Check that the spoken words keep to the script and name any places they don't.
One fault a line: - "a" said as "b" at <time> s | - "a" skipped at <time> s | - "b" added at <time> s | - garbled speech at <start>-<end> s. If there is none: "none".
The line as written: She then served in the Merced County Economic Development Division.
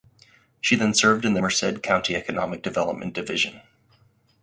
none